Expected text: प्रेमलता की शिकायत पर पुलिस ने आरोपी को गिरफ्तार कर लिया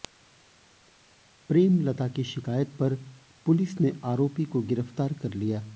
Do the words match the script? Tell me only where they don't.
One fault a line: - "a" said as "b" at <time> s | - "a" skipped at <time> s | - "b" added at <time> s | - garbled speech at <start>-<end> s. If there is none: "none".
none